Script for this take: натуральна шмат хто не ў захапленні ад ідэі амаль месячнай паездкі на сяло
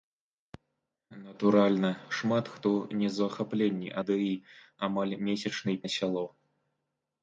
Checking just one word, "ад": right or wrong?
wrong